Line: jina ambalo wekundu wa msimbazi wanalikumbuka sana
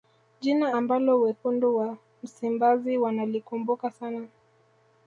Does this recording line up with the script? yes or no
yes